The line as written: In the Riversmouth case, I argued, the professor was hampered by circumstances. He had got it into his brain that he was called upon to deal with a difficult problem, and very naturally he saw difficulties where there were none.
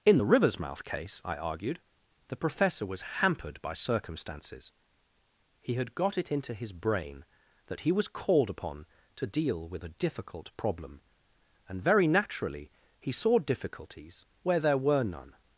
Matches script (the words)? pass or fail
pass